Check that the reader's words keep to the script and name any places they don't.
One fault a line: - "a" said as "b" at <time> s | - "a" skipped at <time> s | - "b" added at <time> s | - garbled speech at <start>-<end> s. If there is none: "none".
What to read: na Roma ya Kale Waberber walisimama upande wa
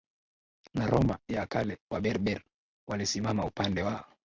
none